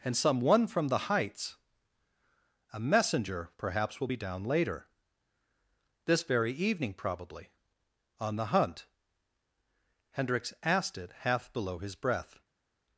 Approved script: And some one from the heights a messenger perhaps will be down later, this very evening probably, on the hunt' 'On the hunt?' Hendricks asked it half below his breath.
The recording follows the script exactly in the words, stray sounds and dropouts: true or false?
false